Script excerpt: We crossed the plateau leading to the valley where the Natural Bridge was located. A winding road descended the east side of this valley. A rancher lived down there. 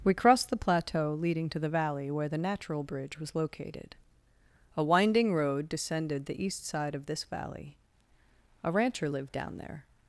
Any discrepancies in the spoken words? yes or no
no